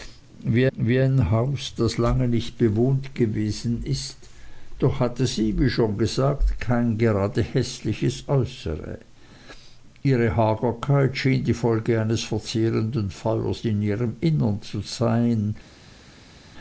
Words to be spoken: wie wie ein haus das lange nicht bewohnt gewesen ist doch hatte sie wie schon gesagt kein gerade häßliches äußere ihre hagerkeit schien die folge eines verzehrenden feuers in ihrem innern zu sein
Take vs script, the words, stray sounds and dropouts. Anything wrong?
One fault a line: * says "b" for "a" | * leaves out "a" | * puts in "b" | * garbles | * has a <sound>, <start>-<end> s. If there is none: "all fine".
all fine